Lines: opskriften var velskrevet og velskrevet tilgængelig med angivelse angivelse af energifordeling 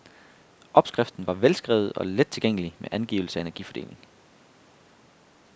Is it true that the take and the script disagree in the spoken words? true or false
true